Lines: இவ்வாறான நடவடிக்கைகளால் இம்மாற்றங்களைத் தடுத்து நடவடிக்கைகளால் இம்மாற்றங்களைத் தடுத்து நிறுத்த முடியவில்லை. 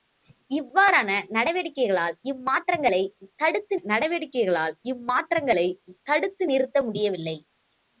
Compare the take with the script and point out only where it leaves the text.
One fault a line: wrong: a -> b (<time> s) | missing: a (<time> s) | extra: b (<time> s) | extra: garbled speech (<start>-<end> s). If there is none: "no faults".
no faults